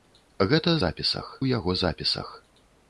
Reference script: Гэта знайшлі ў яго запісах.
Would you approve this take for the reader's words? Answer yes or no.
no